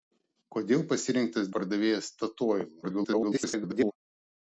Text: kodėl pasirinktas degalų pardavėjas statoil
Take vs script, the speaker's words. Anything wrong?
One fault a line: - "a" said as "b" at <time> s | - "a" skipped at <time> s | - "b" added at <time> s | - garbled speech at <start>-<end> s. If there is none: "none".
- "degalų" skipped at 1.5 s
- garbled speech at 2.8-3.9 s